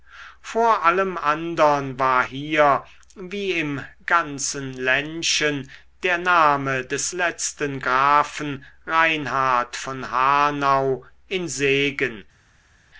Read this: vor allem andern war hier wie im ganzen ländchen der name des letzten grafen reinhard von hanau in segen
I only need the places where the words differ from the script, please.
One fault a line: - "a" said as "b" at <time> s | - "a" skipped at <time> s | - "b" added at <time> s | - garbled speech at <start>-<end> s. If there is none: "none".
none